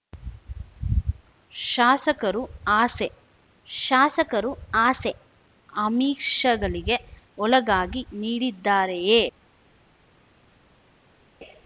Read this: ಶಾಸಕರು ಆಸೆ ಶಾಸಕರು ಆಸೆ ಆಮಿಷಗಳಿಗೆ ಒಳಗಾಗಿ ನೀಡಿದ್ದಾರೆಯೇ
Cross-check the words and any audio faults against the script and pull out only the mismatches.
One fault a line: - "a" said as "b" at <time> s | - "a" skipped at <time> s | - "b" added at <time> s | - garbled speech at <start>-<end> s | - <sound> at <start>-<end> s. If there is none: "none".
none